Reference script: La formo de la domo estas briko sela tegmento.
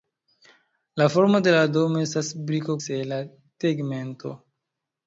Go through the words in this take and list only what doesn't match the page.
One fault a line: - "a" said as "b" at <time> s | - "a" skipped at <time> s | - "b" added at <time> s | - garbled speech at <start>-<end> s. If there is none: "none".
none